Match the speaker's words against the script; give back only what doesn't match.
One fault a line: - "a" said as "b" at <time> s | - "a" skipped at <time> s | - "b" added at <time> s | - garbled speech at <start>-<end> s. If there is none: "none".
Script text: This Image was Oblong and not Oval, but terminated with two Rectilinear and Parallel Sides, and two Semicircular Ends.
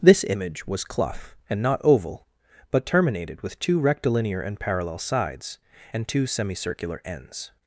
- "Oblong" said as "Clough" at 0.8 s